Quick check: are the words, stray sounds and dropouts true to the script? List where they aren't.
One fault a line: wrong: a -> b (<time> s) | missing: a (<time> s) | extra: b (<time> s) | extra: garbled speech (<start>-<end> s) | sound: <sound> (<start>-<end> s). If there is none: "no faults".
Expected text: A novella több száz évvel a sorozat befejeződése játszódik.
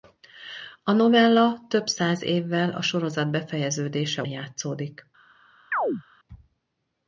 sound: chirp (5.7-6.0 s)